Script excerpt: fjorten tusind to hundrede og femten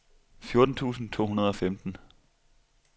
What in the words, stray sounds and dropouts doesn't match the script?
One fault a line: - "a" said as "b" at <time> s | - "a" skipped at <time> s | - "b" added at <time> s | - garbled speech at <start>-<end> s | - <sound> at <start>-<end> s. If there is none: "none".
none